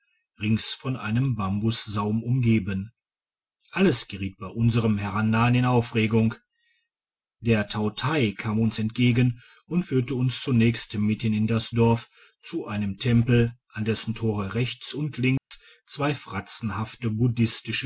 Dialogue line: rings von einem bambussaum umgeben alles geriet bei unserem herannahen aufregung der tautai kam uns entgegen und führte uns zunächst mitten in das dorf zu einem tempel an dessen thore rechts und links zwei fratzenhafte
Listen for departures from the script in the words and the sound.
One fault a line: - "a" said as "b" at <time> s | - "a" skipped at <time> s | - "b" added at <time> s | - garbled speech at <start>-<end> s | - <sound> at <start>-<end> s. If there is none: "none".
- "in" added at 5.5 s
- dropout at 15.4-15.5 s